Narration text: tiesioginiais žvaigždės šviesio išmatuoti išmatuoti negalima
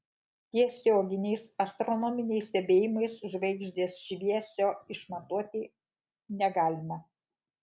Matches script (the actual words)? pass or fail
fail